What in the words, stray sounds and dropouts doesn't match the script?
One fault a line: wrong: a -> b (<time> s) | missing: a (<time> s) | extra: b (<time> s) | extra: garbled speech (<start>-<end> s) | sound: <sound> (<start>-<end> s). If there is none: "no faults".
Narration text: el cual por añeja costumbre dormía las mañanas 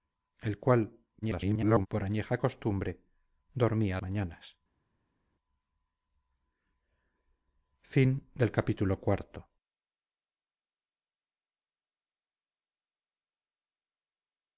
extra: garbled speech (1.2-1.9 s)
missing: las (4.0 s)